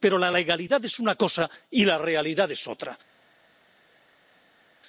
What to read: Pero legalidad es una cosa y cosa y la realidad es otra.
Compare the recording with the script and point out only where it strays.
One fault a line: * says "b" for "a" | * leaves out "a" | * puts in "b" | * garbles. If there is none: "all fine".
* puts in "la"
* leaves out "cosa y"